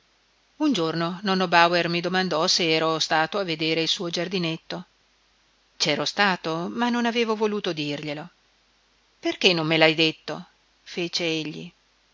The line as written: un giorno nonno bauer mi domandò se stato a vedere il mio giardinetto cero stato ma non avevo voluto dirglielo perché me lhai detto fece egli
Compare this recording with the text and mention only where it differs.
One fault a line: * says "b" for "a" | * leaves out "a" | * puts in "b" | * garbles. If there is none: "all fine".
* puts in "ero"
* says "suo" for "mio"
* puts in "non"